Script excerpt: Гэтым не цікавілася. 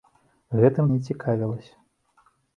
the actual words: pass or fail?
pass